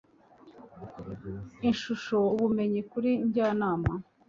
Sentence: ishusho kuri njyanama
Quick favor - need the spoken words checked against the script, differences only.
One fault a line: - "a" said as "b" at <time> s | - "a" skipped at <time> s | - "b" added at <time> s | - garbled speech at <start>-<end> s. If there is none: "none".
- "ubumenyi" added at 2.3 s